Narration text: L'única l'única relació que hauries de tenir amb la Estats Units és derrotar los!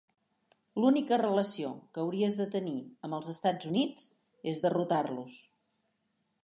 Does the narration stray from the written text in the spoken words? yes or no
yes